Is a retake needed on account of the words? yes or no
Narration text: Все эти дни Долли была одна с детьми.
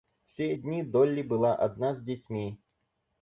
yes